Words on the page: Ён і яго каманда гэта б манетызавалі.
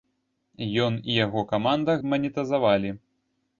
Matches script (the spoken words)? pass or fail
fail